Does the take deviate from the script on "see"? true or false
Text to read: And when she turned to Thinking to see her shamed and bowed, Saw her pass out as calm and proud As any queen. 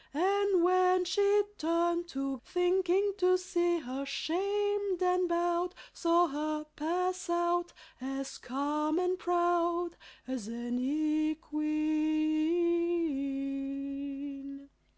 false